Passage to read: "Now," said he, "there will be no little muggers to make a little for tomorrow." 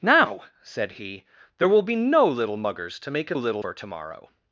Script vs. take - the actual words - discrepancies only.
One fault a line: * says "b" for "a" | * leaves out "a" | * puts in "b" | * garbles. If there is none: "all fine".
all fine